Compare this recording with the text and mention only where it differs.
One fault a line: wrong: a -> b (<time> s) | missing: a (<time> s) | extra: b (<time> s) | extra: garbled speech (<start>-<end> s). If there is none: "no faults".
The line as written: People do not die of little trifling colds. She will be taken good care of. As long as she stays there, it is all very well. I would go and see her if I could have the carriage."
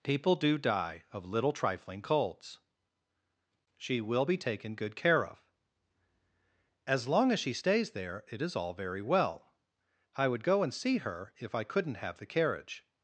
missing: not (0.6 s)
wrong: could -> couldn't (11.6 s)